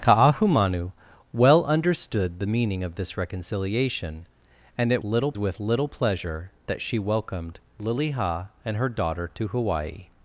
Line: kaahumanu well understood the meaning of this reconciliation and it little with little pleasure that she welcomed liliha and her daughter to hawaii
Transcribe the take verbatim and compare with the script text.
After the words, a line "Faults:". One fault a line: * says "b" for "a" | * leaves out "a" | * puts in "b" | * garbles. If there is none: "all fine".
kaahumanu well understood the meaning of this reconciliation and it little with little pleasure that she welcomed liliha and her daughter to hawaii
Faults:
all fine